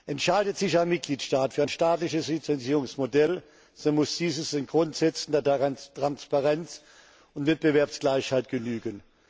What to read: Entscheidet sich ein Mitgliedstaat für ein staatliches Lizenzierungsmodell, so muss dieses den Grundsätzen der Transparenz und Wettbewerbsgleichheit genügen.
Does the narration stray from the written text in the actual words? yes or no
no